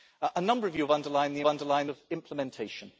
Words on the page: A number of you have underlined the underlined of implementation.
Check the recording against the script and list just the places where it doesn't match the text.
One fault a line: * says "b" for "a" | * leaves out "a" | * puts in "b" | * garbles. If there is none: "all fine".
all fine